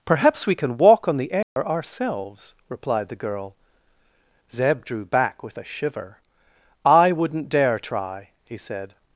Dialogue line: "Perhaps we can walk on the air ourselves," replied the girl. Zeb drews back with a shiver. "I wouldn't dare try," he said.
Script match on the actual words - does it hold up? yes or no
no